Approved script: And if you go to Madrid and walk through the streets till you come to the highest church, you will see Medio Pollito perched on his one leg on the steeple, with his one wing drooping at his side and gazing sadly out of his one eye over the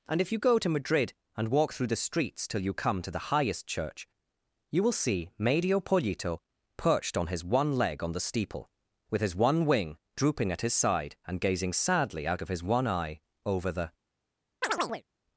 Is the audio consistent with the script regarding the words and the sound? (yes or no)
no